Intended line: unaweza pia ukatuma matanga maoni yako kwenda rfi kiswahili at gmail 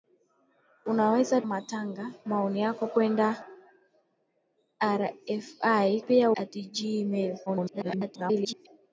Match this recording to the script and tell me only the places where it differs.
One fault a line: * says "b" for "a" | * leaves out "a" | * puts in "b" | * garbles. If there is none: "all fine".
* leaves out "pia ukatuma"
* says "pia" for "kiswahili"
* garbles